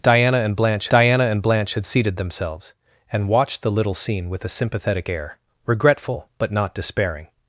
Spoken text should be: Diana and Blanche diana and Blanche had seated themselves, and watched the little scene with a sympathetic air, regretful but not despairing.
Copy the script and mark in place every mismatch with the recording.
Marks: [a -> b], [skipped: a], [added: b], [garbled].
Diana and Blanche diana and Blanche had seated themselves, and watched the little scene with a sympathetic air, regretful but not despairing.